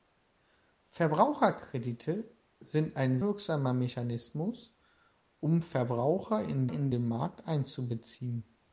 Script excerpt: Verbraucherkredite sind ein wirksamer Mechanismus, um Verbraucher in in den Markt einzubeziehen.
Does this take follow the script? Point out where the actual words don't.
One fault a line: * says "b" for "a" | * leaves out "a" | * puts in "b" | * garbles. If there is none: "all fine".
all fine